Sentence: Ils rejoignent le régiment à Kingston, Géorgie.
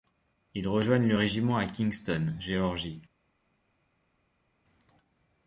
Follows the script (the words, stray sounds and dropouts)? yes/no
yes